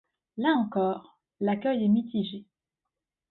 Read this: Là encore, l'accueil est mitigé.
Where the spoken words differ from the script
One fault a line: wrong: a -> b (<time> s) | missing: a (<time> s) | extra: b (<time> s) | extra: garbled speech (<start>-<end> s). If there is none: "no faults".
no faults